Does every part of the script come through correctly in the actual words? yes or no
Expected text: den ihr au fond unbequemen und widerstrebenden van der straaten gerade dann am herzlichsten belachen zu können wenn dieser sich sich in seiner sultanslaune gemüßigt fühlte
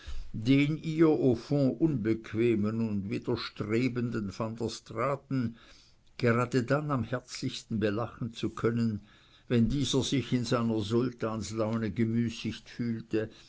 no